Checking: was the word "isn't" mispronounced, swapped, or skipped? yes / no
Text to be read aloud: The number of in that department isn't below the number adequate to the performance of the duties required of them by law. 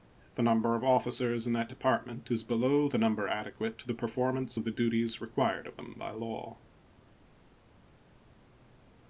yes